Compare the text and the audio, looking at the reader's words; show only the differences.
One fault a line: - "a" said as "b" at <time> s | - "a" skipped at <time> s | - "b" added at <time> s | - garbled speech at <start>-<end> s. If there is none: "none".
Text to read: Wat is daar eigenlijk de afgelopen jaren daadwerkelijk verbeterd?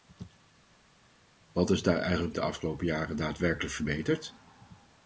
none